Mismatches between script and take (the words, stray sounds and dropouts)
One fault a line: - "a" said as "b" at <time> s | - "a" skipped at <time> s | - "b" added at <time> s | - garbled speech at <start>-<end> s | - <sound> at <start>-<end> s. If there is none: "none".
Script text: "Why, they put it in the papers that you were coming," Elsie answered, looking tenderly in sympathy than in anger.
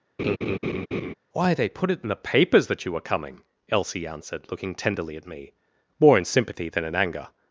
- laugh at 0.2-1.1 s
- "at me more" added at 5.2 s